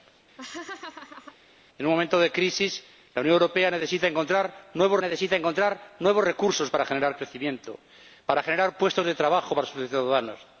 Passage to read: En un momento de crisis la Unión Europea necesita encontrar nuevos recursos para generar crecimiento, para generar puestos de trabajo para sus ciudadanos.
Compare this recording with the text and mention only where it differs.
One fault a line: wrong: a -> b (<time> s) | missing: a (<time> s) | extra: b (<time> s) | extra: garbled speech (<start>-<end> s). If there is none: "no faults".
extra: necesita encontrar nuevos (5.0 s)